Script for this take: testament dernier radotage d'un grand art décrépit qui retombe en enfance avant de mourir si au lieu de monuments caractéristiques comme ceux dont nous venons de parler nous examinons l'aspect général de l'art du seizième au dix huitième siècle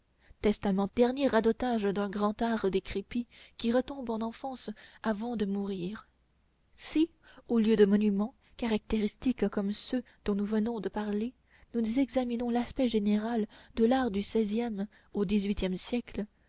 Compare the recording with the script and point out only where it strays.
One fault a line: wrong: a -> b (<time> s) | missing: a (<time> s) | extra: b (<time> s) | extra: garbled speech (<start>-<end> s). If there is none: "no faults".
no faults